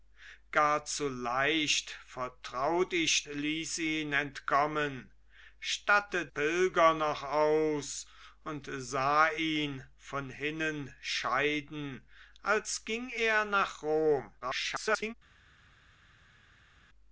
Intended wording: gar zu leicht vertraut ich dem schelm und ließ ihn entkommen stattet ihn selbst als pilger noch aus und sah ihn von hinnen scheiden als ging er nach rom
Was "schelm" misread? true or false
true